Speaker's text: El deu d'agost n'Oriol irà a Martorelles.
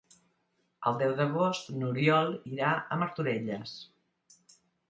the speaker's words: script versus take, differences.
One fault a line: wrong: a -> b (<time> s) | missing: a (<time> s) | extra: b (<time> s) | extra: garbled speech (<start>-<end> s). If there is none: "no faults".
no faults